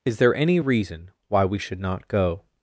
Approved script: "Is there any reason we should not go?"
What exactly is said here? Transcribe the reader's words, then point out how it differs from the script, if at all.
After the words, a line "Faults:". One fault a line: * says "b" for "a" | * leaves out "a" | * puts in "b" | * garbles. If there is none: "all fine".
"Is there any reason why we should not go?"
Faults:
* puts in "why"